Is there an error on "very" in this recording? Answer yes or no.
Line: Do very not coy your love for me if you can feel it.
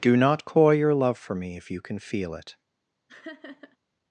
yes